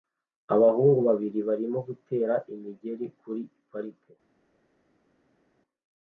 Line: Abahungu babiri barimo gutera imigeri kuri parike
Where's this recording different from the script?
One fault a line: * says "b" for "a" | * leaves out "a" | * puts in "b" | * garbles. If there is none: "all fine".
all fine